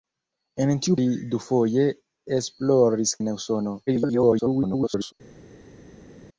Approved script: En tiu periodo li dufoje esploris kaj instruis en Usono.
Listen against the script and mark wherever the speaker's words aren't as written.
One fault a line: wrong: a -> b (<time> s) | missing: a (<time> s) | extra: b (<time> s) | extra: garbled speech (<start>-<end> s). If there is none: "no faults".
missing: periodo (0.9 s)
missing: kaj instruis (3.2 s)
extra: garbled speech (3.9-5.1 s)